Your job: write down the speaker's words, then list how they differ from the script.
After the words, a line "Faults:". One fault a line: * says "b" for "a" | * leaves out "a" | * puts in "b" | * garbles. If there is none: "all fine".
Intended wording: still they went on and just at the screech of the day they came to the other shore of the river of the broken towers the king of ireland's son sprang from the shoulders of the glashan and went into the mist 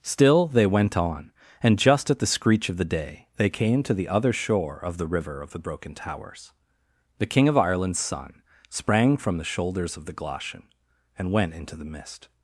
still they went on and just at the screech of the day they came to the other shore of the river of the broken towers the king of ireland's son sprang from the shoulders of the glashan and went into the mist
Faults:
all fine